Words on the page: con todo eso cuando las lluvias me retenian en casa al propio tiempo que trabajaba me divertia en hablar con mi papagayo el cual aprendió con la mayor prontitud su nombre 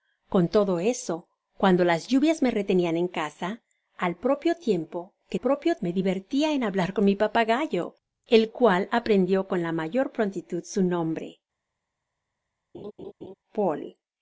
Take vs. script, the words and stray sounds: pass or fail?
fail